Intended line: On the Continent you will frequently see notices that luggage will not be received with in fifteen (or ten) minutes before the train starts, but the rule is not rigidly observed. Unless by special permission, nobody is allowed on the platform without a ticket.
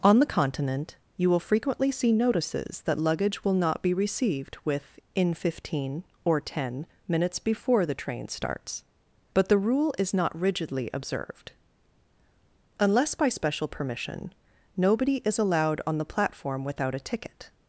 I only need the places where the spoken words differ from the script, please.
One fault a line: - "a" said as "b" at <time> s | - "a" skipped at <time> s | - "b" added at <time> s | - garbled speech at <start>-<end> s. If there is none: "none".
none